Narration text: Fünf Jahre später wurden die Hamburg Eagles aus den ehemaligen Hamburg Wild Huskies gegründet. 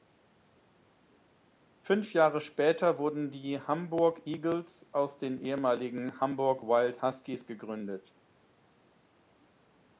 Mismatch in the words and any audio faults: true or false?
false